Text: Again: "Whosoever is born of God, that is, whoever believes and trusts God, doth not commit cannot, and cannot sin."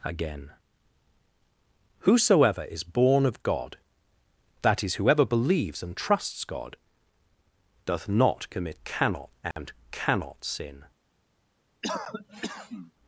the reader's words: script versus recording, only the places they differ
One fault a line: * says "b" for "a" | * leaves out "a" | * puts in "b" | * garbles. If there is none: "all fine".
all fine